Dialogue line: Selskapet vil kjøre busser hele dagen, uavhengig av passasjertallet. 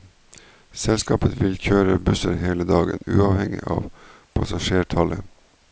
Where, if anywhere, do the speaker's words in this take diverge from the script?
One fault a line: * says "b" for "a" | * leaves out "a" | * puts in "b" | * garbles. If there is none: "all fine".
all fine